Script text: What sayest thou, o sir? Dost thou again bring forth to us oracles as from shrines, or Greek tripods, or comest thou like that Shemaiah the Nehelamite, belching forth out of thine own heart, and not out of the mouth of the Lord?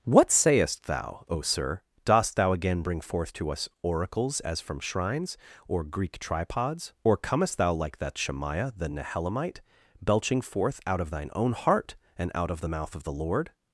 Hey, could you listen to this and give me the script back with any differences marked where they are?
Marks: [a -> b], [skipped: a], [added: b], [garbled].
What sayest thou, o sir? Dost thou again bring forth to us oracles as from shrines, or Greek tripods, or comest thou like that Shemaiah the Nehelamite, belching forth out of thine own heart, and [skipped: not] out of the mouth of the Lord?